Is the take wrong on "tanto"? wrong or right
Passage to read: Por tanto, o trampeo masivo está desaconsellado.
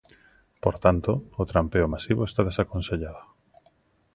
right